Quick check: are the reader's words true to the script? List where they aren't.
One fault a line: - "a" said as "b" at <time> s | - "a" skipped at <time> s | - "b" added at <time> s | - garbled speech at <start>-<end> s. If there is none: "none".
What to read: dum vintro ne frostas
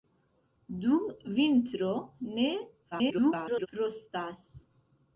- garbled speech at 2.9-3.7 s